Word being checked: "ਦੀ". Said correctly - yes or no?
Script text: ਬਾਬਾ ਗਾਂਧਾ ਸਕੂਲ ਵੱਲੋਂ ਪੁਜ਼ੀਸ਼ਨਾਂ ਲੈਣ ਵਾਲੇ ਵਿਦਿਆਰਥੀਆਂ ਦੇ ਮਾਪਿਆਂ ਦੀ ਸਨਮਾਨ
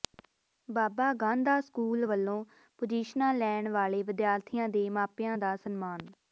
no